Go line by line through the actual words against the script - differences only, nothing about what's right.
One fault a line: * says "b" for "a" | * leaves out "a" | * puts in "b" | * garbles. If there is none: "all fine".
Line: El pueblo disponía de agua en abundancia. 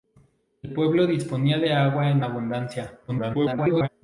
* garbles